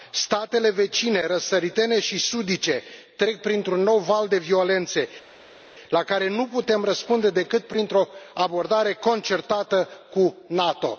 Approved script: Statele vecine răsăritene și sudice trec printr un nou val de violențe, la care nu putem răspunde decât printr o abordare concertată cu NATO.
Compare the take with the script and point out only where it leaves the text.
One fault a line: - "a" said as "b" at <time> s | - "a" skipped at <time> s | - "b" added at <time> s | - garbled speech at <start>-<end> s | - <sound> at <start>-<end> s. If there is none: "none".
none